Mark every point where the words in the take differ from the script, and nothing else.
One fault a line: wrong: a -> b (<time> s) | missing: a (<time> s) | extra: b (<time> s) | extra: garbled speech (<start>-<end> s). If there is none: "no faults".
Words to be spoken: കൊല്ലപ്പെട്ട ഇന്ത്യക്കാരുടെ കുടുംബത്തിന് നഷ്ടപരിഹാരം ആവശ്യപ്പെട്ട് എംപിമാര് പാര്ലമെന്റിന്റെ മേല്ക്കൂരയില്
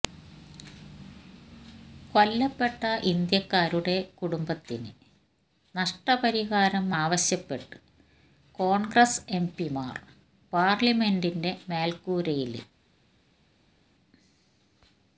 extra: കോണ്ഗ്രസ് (8.6 s)